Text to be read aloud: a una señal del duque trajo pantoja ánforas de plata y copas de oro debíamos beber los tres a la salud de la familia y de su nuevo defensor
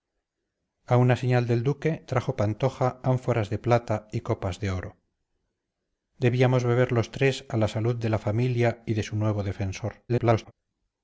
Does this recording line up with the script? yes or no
no